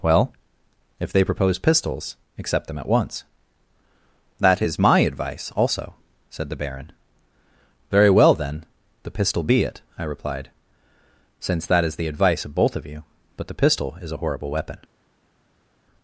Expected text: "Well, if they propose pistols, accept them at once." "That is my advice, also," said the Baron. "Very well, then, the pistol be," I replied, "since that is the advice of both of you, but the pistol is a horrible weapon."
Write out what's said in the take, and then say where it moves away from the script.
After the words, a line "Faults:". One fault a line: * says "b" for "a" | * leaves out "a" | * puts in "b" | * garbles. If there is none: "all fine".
"Well, if they propose pistols, accept them at once." "That is my advice, also," said the Baron. "Very well, then, the pistol be it," I replied, "since that is the advice of both of you, but the pistol is a horrible weapon."
Faults:
* puts in "it"